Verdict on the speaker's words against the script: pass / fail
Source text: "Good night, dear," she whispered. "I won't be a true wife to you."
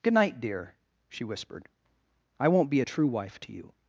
pass